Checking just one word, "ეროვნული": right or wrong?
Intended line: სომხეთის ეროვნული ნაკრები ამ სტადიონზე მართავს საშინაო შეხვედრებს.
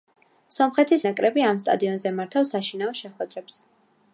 wrong